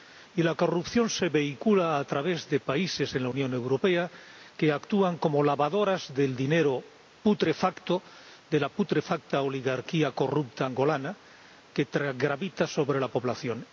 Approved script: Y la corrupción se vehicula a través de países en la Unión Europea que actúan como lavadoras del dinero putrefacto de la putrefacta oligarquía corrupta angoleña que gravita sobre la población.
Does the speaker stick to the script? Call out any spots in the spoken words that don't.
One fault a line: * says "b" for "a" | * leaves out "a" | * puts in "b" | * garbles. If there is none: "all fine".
all fine